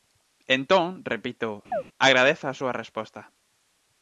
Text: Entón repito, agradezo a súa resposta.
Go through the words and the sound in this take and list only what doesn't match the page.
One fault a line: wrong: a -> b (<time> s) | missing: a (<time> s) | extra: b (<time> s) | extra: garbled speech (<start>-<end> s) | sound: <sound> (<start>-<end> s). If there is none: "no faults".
sound: chirp (1.7-1.8 s)